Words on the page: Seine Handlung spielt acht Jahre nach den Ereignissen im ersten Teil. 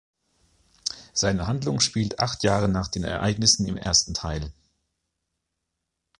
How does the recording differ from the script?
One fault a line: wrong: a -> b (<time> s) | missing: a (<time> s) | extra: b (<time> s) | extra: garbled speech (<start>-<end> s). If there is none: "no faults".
no faults